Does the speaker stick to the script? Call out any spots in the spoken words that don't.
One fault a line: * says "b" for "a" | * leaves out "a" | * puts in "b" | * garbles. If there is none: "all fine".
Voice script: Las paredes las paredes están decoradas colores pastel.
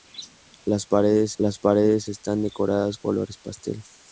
all fine